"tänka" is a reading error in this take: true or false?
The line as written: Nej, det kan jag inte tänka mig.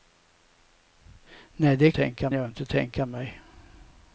false